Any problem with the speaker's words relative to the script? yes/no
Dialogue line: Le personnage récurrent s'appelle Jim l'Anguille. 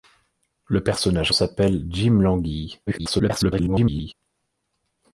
yes